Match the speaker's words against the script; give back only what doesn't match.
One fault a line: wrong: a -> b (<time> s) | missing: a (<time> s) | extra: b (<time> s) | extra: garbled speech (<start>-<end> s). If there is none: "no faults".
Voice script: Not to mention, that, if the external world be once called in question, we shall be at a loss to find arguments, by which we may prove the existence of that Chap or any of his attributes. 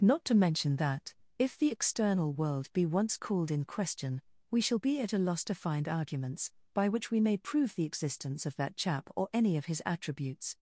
no faults